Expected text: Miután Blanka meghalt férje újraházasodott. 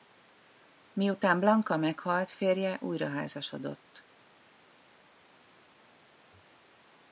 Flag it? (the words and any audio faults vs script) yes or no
no